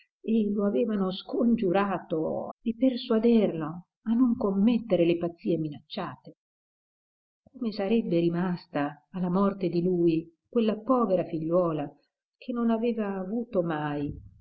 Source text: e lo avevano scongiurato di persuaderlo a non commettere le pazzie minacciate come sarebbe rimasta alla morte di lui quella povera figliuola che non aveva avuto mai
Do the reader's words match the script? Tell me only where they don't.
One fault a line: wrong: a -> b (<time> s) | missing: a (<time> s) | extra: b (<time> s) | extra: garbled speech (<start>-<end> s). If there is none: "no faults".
no faults